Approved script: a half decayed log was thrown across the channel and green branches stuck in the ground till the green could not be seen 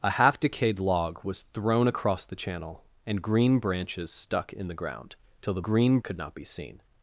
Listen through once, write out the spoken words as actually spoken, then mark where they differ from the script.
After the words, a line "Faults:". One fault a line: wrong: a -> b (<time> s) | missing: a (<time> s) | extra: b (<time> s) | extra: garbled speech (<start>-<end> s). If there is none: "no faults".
a half decayed log was thrown across the channel and green branches stuck in the ground till the green could not be seen
Faults:
no faults